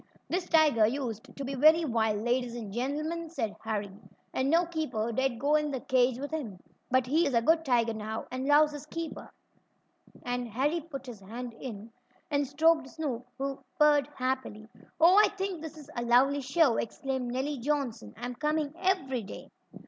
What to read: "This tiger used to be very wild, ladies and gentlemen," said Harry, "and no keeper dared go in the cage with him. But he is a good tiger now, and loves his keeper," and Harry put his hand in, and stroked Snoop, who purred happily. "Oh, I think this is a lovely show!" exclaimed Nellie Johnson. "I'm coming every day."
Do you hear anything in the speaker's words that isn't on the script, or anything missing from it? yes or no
no